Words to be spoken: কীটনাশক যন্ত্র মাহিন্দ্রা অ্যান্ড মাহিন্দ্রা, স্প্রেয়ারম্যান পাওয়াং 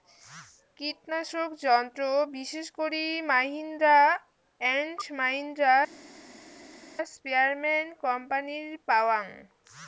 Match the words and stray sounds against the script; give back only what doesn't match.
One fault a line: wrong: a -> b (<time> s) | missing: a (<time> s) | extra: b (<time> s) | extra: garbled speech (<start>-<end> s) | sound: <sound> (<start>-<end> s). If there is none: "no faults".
extra: বিশেষ করি (2.3 s)
extra: কোম্পানির (8.0 s)